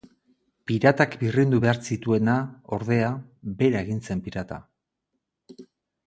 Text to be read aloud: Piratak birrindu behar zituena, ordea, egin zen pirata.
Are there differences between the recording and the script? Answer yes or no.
yes